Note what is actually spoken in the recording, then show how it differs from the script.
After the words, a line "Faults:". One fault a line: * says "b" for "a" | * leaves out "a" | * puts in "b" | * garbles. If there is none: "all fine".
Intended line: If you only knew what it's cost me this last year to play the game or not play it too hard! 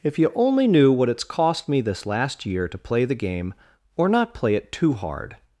If you only knew what it's cost me this last year to play the game or not play it too hard!
Faults:
all fine